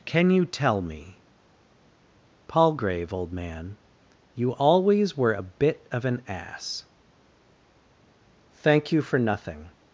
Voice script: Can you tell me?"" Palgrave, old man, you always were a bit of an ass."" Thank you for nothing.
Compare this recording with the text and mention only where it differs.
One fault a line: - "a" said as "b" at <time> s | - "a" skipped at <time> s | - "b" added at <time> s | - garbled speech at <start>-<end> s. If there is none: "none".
none